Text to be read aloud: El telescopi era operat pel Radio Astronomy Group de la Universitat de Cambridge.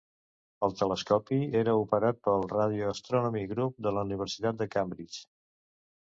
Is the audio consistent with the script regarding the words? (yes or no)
yes